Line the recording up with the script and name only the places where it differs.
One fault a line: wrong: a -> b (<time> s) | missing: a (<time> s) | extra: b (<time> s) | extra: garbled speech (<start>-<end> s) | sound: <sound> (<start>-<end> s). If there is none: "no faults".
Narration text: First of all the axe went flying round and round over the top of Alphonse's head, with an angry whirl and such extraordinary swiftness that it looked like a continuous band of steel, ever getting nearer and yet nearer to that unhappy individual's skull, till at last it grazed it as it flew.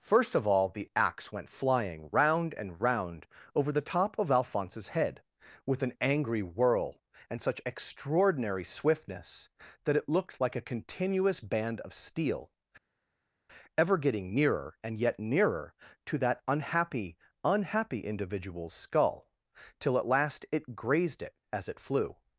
extra: unhappy (17.4 s)